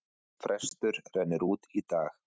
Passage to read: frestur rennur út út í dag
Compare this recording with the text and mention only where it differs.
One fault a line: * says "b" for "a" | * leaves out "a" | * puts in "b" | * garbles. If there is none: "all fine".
* leaves out "út"